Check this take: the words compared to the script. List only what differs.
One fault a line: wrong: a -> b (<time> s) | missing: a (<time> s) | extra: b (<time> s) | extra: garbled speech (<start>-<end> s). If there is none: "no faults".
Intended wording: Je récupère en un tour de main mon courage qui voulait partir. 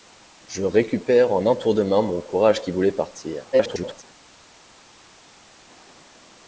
extra: garbled speech (3.5-4.0 s)